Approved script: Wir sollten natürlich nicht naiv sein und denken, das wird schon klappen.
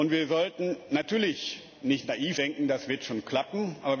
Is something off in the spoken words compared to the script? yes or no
yes